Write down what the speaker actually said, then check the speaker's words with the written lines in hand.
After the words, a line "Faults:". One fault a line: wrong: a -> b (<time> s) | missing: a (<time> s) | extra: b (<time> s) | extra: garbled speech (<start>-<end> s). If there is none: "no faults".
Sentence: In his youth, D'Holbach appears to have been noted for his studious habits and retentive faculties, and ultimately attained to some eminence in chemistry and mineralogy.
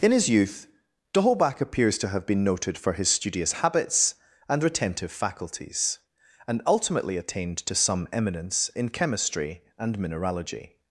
In his youth, D'Holbach appears to have been noted for his studious habits and retentive faculties, and ultimately attained to some eminence in chemistry and mineralogy.
Faults:
no faults